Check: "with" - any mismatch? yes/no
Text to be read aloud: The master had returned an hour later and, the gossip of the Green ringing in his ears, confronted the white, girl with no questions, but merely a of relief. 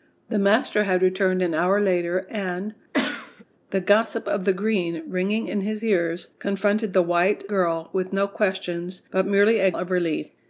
no